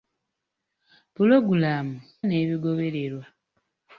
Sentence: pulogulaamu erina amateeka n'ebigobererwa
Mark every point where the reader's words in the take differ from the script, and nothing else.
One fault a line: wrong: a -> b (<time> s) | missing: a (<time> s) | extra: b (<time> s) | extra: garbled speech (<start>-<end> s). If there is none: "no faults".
missing: erina amateeka (2.0 s)